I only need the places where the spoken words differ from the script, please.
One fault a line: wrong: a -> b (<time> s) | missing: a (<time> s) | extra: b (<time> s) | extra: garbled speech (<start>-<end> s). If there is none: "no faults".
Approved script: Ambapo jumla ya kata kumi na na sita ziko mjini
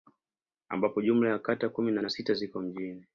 no faults